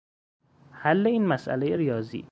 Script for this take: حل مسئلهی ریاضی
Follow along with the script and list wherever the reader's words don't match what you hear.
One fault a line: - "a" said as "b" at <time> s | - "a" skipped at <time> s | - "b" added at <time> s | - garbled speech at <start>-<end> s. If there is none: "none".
- "این" added at 1.1 s